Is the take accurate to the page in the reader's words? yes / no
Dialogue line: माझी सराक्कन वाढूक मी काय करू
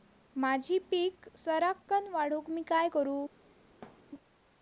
no